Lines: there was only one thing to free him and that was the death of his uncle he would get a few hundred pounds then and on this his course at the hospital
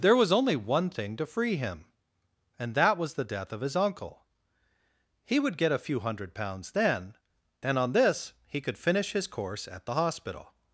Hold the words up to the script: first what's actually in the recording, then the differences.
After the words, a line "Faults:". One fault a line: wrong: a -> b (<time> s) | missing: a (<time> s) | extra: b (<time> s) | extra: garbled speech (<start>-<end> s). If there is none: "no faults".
there was only one thing to free him and that was the death of his uncle he would get a few hundred pounds then and on this he could finish his course at the hospital
Faults:
extra: he could finish (8.5 s)